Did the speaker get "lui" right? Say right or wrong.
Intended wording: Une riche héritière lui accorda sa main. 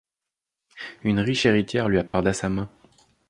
right